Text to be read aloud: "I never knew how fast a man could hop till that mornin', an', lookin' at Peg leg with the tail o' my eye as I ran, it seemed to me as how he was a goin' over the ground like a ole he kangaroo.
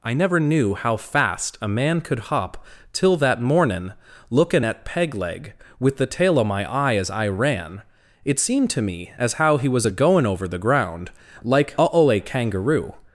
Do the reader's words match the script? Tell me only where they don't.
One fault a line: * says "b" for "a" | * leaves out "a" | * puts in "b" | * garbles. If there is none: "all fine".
* leaves out "an"
* leaves out "he"